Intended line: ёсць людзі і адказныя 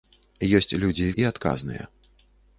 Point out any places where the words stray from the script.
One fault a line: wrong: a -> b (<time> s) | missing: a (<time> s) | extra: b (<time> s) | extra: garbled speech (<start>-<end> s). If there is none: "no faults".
no faults